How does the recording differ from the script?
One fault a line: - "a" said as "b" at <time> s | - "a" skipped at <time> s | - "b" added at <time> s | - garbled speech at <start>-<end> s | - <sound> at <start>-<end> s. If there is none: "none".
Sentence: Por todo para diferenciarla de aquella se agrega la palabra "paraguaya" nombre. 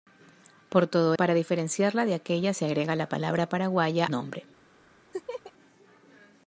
- laugh at 5.1-5.5 s